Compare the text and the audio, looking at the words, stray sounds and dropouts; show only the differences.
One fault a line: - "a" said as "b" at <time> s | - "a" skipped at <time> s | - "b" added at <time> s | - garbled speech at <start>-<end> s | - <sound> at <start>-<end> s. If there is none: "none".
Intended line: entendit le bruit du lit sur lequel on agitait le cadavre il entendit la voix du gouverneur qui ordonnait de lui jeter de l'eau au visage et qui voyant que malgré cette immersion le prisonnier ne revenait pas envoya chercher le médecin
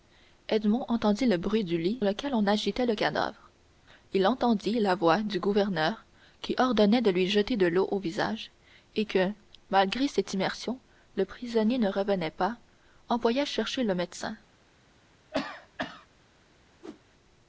- "sur" skipped at 2.0 s
- "qui voyant" skipped at 9.0 s
- cough at 15.3-16.1 s
- whoosh at 16.8-17.0 s